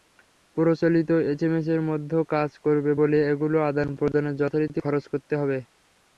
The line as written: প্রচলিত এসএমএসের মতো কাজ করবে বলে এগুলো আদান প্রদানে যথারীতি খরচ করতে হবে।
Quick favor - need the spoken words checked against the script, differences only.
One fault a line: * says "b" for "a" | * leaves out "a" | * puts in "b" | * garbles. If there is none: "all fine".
all fine